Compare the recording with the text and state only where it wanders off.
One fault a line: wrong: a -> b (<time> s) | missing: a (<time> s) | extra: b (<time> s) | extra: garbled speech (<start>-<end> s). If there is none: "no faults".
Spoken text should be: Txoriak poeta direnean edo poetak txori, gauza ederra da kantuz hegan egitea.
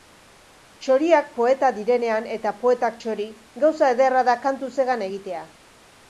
wrong: edo -> eta (2.4 s)